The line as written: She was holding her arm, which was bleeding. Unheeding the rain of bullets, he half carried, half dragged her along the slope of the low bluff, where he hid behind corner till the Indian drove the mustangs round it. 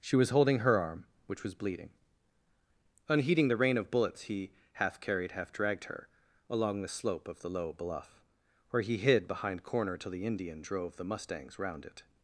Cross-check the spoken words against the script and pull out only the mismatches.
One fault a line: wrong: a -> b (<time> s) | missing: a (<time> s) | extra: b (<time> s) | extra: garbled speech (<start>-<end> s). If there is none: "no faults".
no faults